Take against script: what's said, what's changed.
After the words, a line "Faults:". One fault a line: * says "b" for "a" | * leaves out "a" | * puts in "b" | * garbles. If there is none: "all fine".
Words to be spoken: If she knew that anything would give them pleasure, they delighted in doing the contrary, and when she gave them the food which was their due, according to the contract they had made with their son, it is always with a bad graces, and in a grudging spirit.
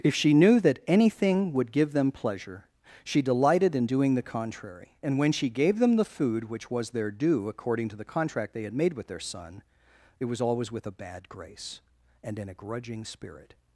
If she knew that anything would give them pleasure, she delighted in doing the contrary, and when she gave them the food which was their due, according to the contract they had made with their son, it was always with a bad grace, and in a grudging spirit.
Faults:
* says "she" for "they"
* says "was" for "is"
* says "grace" for "graces"